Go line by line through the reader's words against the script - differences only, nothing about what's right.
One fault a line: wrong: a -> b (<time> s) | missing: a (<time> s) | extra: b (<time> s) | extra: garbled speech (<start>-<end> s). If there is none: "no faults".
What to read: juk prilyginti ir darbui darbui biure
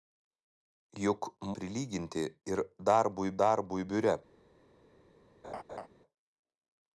no faults